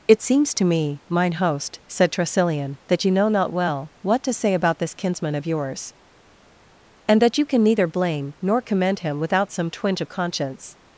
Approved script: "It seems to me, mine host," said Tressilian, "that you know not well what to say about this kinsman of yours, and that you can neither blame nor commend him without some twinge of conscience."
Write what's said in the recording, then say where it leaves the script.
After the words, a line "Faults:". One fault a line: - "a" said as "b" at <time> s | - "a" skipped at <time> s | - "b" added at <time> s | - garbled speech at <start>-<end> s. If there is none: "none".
"It seems to me, mine host," said Tressilian, "that you know not well what to say about this kinsman of yours, and that you can neither blame nor commend him without some twinge of conscience."
Faults:
none